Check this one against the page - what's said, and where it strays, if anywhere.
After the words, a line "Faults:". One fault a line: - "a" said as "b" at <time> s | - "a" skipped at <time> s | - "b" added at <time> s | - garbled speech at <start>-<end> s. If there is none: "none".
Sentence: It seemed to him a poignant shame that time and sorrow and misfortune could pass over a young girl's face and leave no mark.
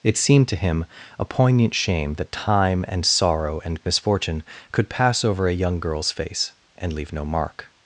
It seemed to him a poignant shame that time and sorrow and misfortune could pass over a young girl's face and leave no mark.
Faults:
none